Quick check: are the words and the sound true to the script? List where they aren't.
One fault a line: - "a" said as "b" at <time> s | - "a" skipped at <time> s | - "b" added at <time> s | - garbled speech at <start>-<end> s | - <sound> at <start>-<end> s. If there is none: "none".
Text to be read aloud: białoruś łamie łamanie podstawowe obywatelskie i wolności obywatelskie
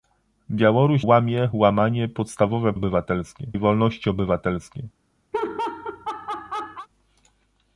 - laugh at 5.3-6.9 s